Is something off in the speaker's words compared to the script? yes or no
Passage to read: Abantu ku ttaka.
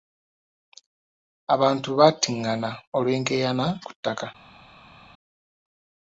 yes